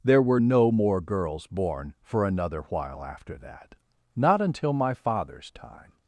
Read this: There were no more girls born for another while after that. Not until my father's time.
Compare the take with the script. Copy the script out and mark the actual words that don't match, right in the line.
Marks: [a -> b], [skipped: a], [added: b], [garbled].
There were no more girls born for another while after that. Not until my father's time.